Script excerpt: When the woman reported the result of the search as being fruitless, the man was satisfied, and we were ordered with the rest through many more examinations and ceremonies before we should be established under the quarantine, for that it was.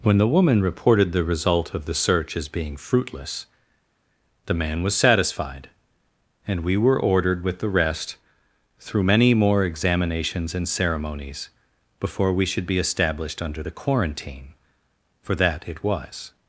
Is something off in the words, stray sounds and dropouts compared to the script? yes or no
no